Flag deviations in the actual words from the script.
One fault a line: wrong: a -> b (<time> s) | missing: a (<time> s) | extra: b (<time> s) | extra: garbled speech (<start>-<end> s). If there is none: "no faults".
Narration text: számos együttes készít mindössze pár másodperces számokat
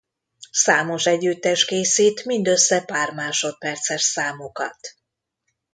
no faults